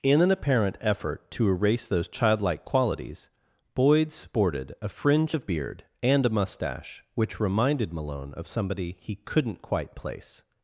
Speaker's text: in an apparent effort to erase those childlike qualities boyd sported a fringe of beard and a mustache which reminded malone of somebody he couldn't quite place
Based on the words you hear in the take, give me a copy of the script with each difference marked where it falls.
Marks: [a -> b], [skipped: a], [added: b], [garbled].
in an apparent effort to erase those childlike qualities boyd sported a fringe of beard and a mustache which reminded malone of somebody he couldn't quite place